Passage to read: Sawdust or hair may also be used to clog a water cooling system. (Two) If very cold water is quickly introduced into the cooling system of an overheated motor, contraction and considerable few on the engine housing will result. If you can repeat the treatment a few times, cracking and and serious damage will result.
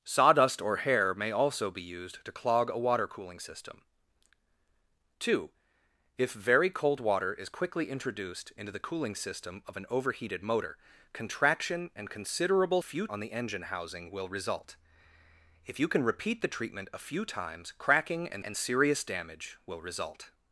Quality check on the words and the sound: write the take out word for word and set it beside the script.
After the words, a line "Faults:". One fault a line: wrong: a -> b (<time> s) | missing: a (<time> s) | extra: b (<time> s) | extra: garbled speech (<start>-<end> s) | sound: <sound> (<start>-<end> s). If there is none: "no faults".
Sawdust or hair may also be used to clog a water cooling system. (Two) If very cold water is quickly introduced into the cooling system of an overheated motor, contraction and considerable few on the engine housing will result. If you can repeat the treatment a few times, cracking and and serious damage will result.
Faults:
no faults